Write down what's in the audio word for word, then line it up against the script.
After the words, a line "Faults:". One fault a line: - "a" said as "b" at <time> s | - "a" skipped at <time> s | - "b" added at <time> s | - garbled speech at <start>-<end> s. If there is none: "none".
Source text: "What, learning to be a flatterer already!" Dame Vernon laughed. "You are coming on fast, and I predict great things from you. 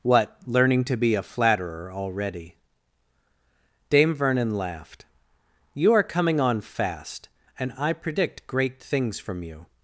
"What, learning to be a flatterer already!" Dame Vernon laughed. "You are coming on fast, and I predict great things from you.
Faults:
none